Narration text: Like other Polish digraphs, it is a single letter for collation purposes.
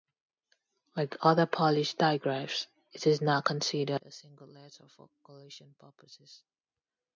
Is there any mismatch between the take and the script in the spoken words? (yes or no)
yes